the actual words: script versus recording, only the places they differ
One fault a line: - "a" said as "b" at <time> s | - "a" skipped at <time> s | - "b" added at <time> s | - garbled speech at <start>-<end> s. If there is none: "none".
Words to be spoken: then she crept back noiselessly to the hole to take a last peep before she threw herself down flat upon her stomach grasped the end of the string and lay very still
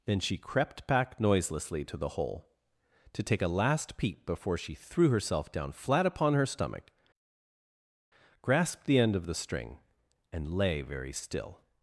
none